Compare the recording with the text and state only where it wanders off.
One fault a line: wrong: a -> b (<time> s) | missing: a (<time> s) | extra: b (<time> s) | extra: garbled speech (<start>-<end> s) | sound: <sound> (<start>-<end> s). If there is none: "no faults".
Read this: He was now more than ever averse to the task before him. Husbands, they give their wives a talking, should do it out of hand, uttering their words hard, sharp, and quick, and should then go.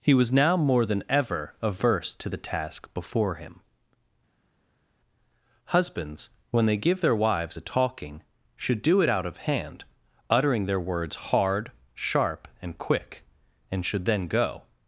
extra: when (6.5 s)